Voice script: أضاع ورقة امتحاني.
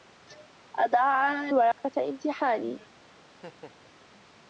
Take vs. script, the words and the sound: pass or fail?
fail